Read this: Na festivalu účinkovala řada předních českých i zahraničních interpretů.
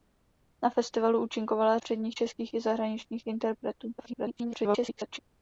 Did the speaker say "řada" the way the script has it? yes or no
no